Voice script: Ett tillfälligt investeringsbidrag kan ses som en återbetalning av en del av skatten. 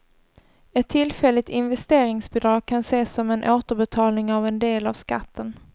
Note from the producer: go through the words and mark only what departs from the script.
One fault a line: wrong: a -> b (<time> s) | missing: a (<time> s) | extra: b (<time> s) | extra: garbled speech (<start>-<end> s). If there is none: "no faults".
no faults